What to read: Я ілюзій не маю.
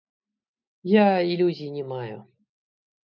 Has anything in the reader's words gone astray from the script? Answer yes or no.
no